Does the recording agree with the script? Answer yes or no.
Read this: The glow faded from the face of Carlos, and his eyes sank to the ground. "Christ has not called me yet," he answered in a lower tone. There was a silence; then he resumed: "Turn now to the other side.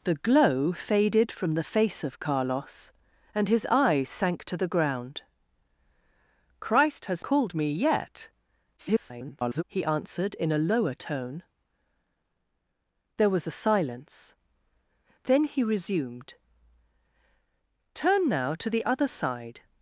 no